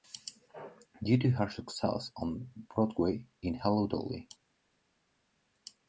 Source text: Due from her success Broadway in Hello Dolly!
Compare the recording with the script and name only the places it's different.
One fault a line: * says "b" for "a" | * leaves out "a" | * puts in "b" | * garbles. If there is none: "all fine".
* says "to" for "from"
* puts in "on"